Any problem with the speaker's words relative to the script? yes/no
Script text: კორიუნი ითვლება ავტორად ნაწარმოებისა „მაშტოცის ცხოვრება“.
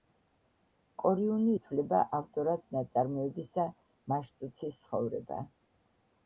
no